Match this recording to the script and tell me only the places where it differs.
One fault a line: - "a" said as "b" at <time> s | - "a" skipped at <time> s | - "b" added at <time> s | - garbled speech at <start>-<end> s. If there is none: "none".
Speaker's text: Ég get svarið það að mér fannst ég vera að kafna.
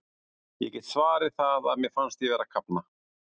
none